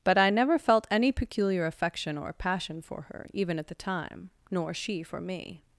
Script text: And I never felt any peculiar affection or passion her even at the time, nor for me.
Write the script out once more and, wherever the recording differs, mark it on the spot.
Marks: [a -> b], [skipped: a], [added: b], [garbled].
[And -> But] I never felt any peculiar affection or passion [added: for] her even at the time, nor [added: she] for me.